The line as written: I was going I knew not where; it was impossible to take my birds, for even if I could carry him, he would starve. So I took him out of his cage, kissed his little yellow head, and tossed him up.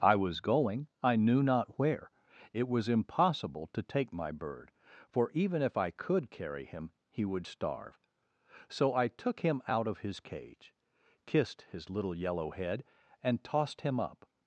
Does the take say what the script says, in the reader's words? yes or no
no